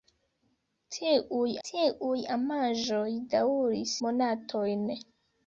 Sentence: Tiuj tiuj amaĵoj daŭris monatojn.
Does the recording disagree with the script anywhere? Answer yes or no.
no